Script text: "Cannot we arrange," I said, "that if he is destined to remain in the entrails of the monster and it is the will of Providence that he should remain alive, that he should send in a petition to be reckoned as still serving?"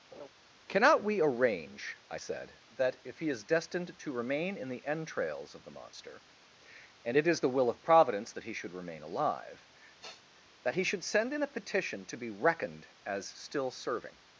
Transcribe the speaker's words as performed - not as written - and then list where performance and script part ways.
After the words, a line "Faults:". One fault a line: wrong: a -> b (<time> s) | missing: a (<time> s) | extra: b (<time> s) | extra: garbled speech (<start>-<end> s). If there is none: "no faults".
"Cannot we arrange," I said, "that if he is destined to remain in the entrails of the monster and it is the will of Providence that he should remain alive, that he should send in a petition to be reckoned as still serving?"
Faults:
no faults